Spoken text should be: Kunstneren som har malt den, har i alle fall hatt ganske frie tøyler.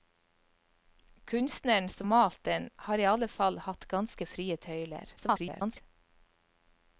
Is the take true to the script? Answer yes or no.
no